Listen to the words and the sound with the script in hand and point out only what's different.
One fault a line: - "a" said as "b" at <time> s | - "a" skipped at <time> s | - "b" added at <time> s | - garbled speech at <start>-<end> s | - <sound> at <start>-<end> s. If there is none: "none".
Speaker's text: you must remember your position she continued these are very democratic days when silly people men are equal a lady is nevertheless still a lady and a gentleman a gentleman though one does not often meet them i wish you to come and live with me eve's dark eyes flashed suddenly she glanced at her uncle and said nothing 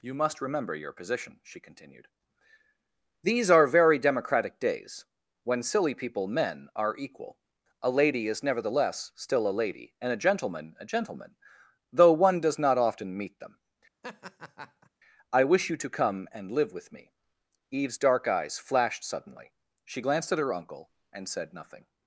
- laugh at 14.0-14.9 s